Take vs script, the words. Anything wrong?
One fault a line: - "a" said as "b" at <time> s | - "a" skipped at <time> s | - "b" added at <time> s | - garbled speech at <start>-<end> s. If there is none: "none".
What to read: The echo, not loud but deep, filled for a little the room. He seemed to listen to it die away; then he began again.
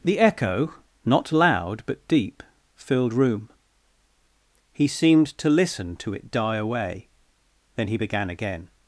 - "for a little the" skipped at 3.1 s